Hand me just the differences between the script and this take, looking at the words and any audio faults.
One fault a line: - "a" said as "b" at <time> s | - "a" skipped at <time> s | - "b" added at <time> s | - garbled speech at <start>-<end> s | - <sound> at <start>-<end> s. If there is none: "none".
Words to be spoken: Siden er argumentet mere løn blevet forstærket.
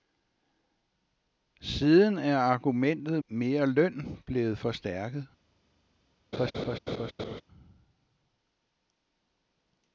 - laugh at 6.3-7.4 s